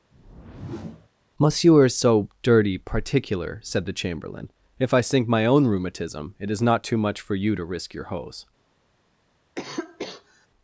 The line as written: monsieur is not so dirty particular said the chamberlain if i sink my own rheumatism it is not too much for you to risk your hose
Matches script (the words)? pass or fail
fail